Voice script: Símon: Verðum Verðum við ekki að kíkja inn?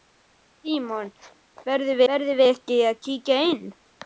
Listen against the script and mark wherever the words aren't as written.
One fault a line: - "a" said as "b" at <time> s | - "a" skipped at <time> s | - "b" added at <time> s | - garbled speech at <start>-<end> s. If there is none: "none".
none